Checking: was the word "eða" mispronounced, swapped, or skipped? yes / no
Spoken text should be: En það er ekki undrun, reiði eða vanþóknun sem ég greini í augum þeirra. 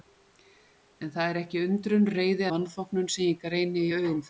yes